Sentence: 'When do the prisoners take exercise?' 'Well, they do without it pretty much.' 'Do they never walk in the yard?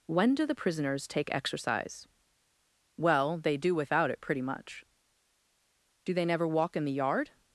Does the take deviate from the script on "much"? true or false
false